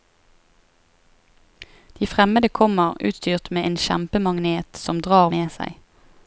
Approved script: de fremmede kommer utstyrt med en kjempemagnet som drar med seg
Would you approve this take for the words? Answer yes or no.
yes